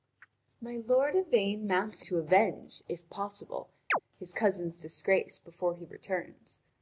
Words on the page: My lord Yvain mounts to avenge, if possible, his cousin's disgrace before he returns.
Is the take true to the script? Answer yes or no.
yes